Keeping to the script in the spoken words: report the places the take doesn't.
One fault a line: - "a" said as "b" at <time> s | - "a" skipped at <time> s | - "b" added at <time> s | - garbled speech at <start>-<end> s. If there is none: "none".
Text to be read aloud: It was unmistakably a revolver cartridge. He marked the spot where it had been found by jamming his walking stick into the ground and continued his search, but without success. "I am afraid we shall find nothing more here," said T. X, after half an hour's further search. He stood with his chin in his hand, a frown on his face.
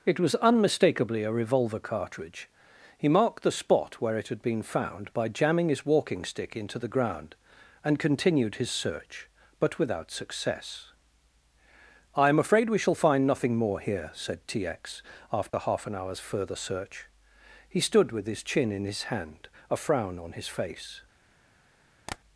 none